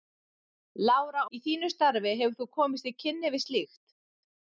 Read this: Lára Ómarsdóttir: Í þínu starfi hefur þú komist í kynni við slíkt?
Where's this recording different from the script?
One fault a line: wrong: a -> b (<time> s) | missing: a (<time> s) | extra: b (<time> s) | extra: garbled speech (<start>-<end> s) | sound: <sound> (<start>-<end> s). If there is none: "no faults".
missing: Ómarsdóttir (1.2 s)